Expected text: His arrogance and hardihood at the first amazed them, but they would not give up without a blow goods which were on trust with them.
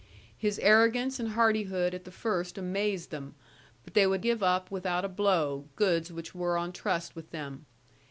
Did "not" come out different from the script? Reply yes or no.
yes